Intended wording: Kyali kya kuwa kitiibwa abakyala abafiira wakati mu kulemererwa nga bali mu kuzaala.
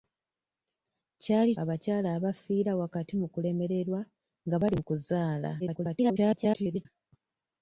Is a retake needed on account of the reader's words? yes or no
yes